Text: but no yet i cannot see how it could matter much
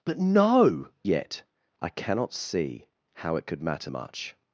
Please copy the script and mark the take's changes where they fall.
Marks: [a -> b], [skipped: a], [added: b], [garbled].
but no yet i cannot see how it could matter much